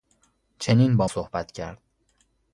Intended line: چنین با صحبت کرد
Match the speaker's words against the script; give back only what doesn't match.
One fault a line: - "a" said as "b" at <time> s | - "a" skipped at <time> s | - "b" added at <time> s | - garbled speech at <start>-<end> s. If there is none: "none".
none